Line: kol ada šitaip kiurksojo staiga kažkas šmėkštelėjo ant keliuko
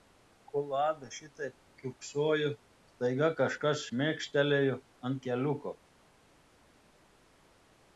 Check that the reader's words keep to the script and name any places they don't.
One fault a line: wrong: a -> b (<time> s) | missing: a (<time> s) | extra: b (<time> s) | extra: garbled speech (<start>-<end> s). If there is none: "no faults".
no faults